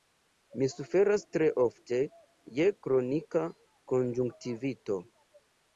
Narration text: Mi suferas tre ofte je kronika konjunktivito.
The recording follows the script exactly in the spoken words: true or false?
true